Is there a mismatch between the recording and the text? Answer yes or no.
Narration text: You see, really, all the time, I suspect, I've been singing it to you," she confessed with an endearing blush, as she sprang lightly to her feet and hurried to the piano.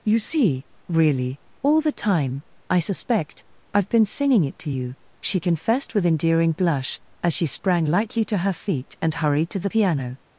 yes